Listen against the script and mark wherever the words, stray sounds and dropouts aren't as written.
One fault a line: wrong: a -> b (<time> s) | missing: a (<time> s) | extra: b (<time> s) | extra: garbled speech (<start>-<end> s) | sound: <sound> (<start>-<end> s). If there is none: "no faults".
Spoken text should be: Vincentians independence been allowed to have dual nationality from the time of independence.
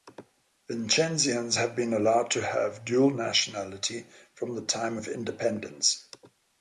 wrong: independence -> have (1.5 s)